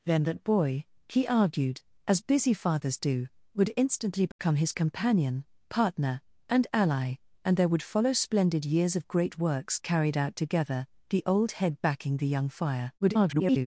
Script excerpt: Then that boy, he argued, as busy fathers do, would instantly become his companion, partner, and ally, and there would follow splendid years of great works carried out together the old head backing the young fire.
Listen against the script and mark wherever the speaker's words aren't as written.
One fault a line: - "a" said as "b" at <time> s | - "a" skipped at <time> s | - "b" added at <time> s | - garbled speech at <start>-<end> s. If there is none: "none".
- garbled speech at 13.0-13.7 s